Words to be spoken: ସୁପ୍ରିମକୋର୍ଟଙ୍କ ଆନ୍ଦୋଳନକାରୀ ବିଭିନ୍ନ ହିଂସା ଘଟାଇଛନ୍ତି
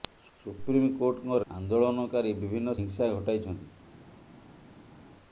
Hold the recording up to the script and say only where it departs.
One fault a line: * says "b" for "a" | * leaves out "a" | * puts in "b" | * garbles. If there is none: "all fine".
all fine